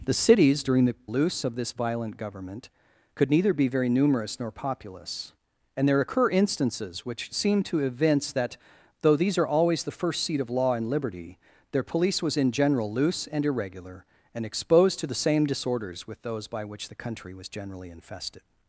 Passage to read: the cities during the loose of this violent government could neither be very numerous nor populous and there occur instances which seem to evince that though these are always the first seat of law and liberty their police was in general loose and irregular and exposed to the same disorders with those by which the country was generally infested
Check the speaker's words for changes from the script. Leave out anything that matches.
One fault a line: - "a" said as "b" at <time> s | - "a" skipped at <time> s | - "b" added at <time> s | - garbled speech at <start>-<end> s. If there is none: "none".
none